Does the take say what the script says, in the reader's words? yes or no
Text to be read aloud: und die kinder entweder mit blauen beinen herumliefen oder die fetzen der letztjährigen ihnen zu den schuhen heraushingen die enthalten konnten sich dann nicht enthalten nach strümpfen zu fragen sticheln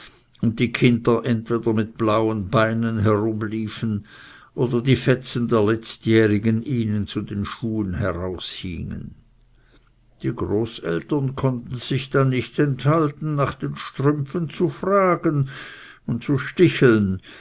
no